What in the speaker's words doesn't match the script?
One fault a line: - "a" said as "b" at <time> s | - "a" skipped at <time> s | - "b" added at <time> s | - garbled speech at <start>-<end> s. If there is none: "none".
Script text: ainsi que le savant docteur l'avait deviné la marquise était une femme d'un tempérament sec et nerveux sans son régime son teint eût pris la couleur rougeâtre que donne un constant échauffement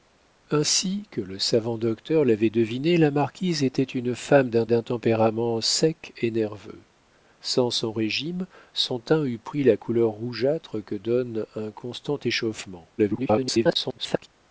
- "d'un" added at 4.7 s
- garbled speech at 13.0-14.3 s